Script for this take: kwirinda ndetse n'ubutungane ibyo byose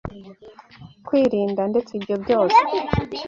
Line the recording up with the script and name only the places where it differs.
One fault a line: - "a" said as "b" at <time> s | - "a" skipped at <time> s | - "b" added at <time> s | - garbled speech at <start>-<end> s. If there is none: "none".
- "n'ubutungane" skipped at 1.9 s